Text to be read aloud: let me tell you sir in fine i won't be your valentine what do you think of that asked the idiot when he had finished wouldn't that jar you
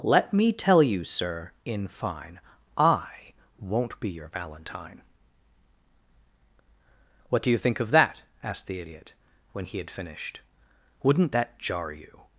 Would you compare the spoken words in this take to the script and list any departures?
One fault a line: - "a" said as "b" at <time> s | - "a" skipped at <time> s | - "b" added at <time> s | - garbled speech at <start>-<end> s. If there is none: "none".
none